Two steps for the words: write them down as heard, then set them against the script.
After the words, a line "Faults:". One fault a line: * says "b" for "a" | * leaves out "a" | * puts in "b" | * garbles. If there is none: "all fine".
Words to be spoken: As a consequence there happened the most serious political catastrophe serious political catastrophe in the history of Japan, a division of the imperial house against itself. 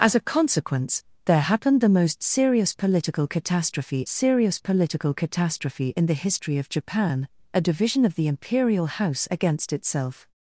As a consequence there happened the most serious political catastrophe serious political catastrophe in the history of Japan, a division of the imperial house against itself.
Faults:
all fine